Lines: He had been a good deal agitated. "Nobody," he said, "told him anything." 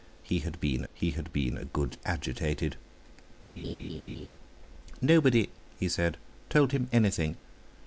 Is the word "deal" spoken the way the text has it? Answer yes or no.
no